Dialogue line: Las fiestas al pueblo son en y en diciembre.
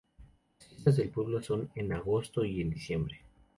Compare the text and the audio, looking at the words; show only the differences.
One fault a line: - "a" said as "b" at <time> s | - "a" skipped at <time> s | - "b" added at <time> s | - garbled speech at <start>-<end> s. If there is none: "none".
- "al" said as "del" at 1.0 s
- "agosto" added at 1.9 s